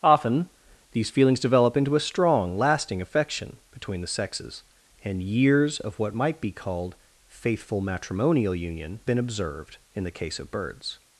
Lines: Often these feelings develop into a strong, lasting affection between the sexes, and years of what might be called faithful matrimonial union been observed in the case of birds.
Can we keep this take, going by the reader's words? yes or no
yes